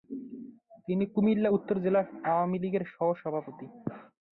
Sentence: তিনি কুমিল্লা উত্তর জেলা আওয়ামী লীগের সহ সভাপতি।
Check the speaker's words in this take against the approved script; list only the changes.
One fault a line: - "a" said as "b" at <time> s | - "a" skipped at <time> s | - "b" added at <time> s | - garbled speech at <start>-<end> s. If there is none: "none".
none